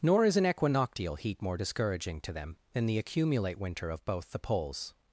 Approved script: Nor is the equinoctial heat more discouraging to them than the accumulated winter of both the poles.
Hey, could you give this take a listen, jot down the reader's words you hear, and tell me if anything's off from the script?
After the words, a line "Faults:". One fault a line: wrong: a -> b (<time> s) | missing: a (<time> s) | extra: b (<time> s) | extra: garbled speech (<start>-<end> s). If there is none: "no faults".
Nor is an equinoctial heat more discouraging to them than the accumulate winter of both the poles.
Faults:
wrong: the -> an (0.3 s)
wrong: accumulated -> accumulate (3.0 s)